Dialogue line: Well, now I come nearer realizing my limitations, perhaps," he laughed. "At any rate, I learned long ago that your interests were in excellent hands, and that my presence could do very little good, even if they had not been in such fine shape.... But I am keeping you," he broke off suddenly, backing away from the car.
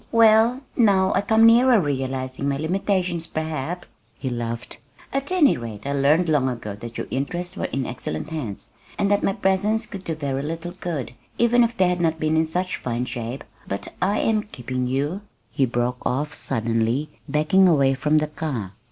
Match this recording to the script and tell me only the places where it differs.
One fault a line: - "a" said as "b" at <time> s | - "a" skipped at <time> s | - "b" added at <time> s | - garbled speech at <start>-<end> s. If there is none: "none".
none